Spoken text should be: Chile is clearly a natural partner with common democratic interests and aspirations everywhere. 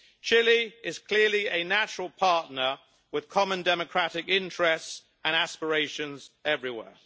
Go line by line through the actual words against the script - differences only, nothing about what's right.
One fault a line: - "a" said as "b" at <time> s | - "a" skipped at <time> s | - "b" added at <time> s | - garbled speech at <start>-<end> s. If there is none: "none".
none